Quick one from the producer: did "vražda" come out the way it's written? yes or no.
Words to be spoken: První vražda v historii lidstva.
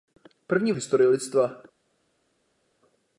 no